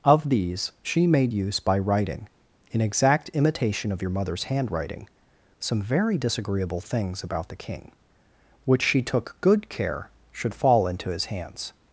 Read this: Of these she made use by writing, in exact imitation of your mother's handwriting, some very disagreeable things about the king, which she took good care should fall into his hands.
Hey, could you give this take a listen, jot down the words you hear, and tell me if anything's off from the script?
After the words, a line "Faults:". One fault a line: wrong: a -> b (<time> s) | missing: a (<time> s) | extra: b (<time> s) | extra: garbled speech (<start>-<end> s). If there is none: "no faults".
Of these she made use by writing, in exact imitation of your mother's handwriting, some very disagreeable things about the king, which she took good care should fall into his hands.
Faults:
no faults